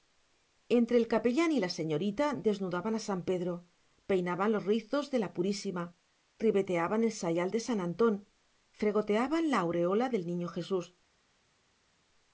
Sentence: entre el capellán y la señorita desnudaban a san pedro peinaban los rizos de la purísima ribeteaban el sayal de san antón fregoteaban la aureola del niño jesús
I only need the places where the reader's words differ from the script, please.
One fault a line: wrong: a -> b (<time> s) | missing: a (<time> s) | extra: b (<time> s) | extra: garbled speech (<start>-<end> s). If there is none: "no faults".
no faults